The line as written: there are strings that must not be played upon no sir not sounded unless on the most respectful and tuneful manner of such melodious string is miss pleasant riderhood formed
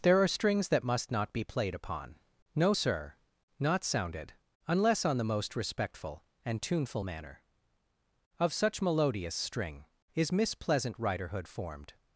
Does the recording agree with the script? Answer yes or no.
yes